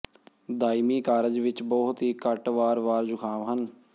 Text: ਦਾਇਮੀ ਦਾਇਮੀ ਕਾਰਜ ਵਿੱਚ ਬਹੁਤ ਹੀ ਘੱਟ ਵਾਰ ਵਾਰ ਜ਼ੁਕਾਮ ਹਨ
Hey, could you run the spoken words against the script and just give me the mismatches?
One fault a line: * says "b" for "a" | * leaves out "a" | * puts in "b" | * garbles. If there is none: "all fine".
* leaves out "ਦਾਇਮੀ"